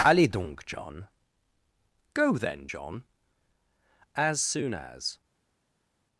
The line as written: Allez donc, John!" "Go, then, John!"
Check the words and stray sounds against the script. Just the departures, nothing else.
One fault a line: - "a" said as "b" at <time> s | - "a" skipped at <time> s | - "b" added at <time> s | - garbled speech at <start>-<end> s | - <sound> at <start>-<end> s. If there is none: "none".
- "As soon as" added at 4.1 s